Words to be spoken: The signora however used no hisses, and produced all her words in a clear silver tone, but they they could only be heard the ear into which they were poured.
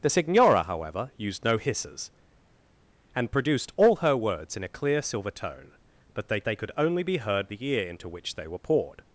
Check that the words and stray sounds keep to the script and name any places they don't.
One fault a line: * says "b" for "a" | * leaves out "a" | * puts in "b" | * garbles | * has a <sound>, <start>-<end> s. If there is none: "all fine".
all fine